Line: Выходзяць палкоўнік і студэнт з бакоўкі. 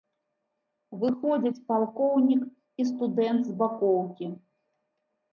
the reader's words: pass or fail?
pass